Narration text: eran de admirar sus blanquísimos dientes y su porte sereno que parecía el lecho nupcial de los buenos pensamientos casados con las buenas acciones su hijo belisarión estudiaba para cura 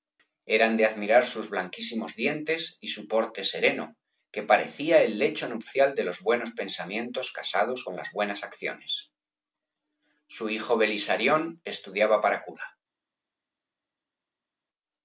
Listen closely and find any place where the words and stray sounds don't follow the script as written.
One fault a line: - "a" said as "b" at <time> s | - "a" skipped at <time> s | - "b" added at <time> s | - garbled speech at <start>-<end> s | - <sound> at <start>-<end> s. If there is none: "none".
none